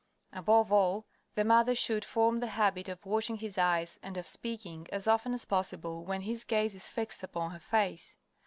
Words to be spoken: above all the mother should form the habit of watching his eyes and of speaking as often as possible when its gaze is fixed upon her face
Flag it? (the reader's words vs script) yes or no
yes